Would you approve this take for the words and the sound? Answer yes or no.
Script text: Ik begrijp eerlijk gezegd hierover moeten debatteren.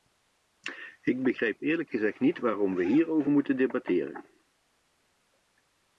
no